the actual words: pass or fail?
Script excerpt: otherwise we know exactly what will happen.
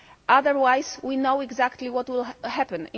pass